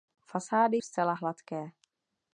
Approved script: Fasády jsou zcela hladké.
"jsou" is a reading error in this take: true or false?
true